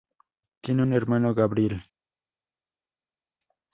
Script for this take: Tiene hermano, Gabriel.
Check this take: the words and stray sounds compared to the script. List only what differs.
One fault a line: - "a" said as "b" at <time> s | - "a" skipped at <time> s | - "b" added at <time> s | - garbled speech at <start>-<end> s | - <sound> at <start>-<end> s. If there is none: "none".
- "un" added at 0.8 s